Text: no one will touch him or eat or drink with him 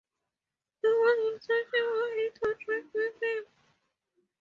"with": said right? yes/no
yes